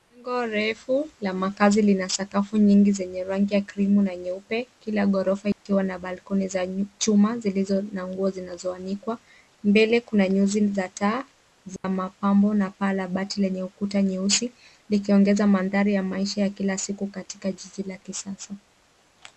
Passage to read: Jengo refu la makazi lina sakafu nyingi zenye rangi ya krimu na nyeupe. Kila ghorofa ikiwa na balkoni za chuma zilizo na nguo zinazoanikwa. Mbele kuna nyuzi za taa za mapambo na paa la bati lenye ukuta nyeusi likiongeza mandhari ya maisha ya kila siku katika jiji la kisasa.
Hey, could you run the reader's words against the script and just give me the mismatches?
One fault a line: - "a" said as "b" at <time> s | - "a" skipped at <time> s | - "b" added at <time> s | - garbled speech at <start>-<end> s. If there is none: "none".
none